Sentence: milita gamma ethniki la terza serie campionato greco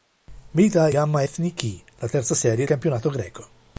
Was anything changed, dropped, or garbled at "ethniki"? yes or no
no